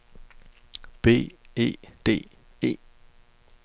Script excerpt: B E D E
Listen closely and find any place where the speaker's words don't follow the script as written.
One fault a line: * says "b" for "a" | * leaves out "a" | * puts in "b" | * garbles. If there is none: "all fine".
all fine